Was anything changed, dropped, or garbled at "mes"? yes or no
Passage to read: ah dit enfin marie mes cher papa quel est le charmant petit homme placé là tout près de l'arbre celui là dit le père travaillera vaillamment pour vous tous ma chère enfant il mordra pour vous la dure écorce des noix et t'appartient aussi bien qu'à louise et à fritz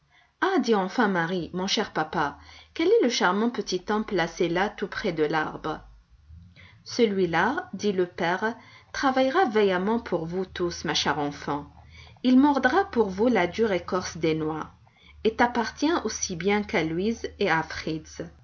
yes